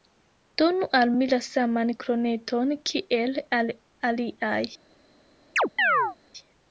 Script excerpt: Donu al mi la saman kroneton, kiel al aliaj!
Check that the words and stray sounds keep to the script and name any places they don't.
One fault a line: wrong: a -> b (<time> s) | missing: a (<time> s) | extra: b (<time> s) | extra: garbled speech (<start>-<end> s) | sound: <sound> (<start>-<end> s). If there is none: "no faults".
sound: chirp (5.6-6.2 s)